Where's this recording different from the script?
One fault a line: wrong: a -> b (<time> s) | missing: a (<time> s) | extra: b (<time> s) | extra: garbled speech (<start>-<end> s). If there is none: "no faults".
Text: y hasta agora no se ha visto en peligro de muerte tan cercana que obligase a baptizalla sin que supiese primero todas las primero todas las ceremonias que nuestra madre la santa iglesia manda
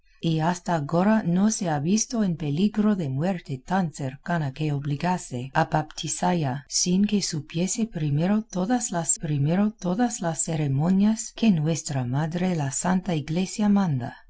no faults